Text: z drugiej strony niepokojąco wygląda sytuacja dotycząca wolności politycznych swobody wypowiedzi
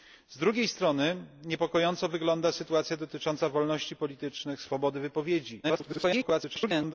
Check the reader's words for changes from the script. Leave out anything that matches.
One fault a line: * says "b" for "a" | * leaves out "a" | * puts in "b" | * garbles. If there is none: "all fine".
* garbles